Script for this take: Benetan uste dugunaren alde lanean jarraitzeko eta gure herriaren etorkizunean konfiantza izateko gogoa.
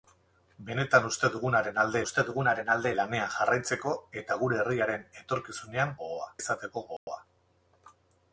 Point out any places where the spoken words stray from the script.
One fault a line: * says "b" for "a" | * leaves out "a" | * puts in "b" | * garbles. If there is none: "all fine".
* puts in "uste dugunaren alde"
* says "gogoa" for "konfiantza"